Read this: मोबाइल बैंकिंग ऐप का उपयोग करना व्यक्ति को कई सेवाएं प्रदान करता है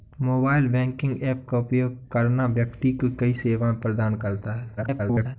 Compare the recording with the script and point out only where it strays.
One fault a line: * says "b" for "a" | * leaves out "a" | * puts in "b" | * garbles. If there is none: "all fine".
* garbles